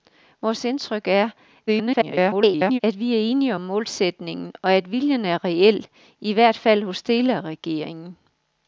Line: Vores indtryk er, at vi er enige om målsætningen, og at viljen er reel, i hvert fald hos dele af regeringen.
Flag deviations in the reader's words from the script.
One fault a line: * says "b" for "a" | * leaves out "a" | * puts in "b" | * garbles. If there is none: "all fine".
* garbles